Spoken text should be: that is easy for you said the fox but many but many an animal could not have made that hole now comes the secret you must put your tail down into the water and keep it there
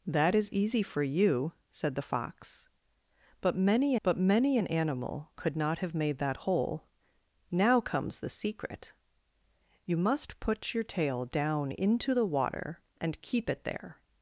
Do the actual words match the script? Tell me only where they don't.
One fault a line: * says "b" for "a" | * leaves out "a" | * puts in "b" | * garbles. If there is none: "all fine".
all fine